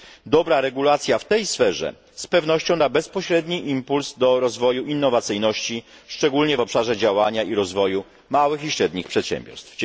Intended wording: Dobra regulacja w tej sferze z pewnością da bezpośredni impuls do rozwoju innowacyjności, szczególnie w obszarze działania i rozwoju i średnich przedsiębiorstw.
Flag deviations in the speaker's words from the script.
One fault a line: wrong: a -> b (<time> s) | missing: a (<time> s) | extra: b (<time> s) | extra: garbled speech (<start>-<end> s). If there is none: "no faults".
extra: małych (8.3 s)